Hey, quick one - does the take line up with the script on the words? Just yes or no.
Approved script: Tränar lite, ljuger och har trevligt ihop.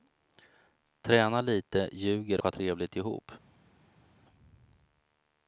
no